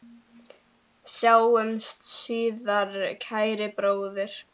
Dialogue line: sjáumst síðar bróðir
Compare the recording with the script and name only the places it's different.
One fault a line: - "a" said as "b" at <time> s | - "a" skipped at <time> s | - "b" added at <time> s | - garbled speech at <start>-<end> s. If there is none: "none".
- "kæri" added at 3.3 s